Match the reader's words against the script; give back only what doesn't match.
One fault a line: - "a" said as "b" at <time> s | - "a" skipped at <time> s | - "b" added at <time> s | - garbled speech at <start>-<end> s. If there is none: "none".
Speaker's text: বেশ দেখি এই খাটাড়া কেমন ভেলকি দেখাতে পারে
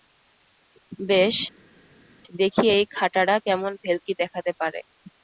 none